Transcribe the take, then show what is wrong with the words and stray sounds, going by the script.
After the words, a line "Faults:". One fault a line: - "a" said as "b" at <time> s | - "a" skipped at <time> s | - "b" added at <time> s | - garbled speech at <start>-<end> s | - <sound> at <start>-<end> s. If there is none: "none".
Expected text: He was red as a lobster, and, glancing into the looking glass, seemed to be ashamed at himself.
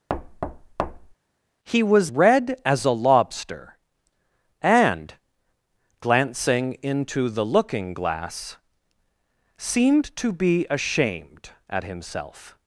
He was red as a lobster, and, glancing into the looking glass, seemed to be ashamed at himself.
Faults:
- thud at 0.1-1.1 s